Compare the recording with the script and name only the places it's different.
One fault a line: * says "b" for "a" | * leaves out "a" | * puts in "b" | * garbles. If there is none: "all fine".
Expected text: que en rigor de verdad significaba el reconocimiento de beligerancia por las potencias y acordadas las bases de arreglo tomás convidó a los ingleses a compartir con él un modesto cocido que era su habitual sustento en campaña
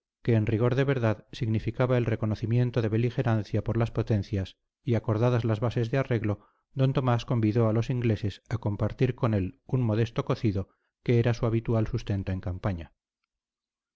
* puts in "d"